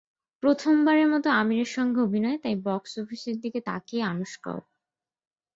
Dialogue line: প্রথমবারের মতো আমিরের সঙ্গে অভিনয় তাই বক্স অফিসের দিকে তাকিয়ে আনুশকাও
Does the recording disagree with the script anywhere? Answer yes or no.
no